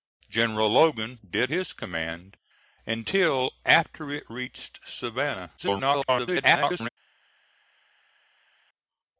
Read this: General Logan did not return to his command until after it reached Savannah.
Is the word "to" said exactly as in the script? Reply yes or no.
no